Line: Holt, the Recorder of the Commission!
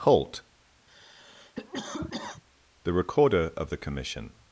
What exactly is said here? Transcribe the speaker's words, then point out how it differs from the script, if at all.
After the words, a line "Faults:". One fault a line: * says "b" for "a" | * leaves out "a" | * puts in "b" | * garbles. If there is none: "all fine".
Holt, the Recorder of the Commission!
Faults:
all fine